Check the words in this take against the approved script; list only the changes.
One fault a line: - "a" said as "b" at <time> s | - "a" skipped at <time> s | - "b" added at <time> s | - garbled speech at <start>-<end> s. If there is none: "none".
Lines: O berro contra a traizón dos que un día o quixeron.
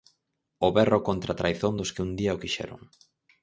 none